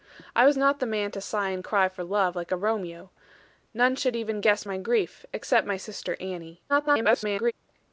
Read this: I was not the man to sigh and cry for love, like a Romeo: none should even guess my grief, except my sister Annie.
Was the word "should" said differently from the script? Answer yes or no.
no